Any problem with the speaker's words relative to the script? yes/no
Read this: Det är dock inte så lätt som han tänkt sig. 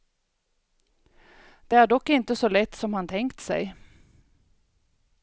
no